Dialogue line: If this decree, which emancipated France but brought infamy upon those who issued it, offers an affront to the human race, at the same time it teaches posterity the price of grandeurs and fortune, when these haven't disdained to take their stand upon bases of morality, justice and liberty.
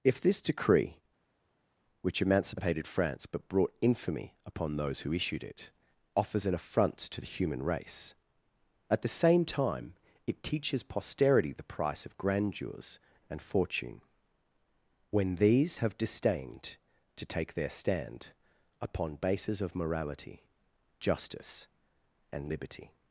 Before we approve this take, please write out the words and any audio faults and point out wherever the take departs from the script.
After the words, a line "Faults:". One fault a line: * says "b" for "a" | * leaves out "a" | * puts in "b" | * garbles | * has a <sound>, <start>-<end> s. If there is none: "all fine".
If this decree, which emancipated France but brought infamy upon those who issued it, offers an affront to the human race, at the same time it teaches posterity the price of grandeurs and fortune, when these have disdained to take their stand upon bases of morality, justice and liberty.
Faults:
* says "have" for "haven't"